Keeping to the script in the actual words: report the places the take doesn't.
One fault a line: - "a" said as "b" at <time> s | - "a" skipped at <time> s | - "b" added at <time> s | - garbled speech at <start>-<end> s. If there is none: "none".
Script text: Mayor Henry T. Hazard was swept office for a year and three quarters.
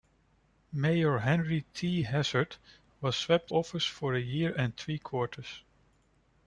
none